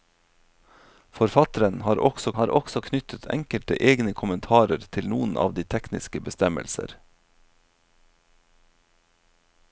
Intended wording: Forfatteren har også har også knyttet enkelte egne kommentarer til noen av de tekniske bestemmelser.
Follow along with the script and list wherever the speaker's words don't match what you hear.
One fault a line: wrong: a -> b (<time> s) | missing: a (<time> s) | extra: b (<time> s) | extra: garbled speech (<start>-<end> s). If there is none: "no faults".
no faults